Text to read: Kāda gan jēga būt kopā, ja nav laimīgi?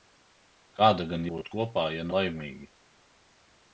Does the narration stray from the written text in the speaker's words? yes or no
yes